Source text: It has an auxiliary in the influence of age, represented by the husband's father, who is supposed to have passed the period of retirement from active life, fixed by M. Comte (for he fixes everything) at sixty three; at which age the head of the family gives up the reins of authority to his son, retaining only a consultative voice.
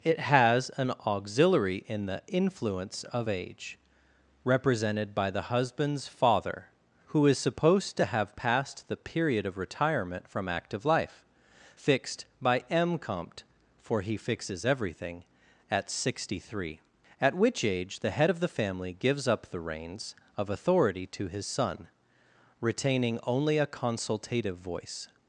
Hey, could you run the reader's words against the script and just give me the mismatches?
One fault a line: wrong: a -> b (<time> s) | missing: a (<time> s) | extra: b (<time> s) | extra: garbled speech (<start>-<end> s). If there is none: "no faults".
no faults